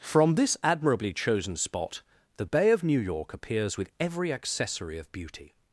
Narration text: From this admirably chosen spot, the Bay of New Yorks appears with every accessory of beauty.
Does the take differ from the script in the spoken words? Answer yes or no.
yes